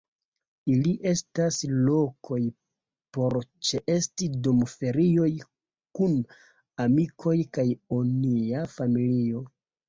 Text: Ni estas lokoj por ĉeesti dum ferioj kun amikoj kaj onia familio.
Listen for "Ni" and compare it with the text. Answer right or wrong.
wrong